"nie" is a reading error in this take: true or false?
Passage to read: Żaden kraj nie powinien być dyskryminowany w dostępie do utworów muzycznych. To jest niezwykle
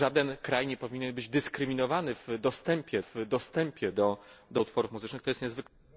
false